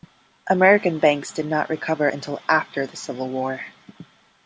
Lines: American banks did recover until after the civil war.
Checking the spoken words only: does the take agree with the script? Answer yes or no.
no